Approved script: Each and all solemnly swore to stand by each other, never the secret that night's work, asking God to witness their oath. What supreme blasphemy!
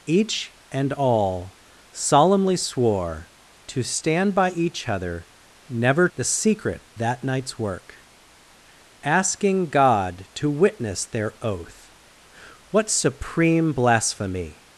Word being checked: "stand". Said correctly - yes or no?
yes